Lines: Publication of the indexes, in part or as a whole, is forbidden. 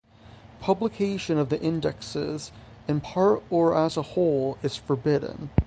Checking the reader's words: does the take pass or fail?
pass